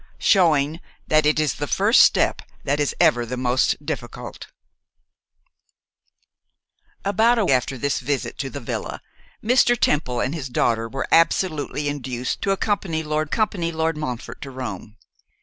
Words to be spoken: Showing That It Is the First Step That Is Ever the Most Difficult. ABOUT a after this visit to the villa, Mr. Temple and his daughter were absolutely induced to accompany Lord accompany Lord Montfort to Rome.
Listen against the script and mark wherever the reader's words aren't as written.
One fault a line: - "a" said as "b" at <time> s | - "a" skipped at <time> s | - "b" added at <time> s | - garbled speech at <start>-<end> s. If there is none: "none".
none